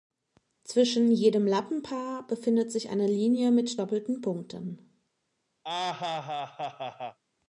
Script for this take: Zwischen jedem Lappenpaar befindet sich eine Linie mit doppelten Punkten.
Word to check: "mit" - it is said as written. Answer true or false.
true